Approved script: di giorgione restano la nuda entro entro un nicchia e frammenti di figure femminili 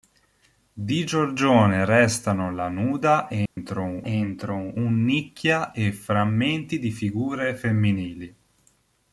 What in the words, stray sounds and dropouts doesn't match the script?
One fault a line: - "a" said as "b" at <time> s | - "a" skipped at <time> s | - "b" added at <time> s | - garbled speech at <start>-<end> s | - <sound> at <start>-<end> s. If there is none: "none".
- dropout at 3.5-3.6 s